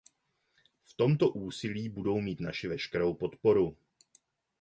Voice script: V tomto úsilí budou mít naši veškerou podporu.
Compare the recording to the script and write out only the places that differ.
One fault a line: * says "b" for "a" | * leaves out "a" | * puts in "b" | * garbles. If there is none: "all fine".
all fine